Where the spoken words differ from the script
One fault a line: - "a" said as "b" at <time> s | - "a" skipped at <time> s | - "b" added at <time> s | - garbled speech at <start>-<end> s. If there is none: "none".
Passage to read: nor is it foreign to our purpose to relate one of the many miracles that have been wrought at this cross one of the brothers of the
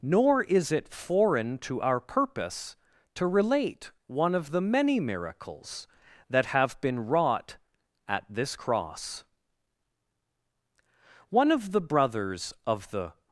none